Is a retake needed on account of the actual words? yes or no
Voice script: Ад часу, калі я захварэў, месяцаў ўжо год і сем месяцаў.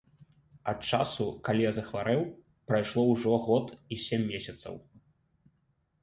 yes